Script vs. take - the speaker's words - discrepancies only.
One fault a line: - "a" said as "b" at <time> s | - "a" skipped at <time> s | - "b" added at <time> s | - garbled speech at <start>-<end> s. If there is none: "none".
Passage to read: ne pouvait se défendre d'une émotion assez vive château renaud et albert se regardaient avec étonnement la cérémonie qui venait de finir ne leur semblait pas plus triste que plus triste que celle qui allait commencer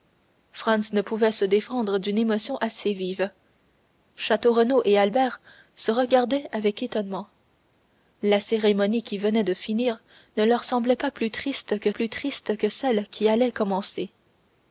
none